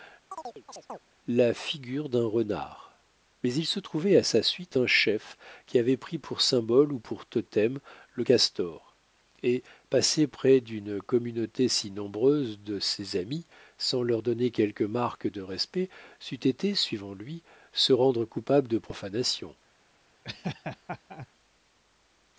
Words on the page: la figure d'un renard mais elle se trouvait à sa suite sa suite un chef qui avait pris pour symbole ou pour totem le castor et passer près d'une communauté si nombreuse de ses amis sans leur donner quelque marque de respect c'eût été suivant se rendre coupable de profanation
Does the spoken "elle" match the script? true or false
false